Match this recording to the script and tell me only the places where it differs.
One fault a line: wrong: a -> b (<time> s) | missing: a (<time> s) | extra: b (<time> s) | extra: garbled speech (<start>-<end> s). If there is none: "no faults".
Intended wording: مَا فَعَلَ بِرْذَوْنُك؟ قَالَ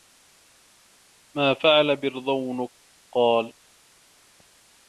no faults